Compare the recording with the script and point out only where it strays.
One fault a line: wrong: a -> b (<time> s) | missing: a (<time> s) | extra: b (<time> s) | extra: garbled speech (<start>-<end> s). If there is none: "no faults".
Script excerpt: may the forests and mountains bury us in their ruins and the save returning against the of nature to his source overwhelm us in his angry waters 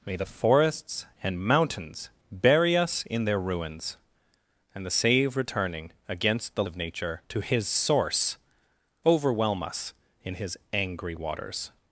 no faults